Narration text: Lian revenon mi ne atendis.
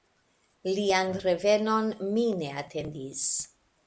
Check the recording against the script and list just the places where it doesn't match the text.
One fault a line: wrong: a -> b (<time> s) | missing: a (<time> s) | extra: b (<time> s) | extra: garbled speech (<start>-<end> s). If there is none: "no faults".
no faults